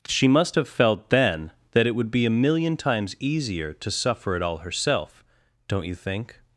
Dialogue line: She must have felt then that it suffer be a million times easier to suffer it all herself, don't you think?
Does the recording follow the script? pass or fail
fail